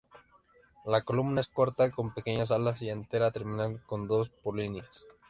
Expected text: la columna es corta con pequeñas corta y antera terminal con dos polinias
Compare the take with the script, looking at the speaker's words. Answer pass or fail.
fail